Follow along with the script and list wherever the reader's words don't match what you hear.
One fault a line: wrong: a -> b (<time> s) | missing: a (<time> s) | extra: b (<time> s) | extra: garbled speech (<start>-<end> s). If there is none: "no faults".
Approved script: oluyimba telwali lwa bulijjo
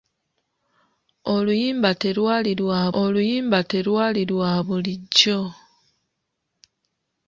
extra: oluyimba telwali lwa (3.0 s)